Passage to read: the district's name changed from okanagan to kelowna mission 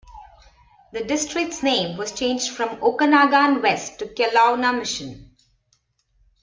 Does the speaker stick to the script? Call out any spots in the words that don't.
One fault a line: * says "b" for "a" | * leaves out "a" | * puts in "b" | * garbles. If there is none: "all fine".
* puts in "was"
* puts in "west"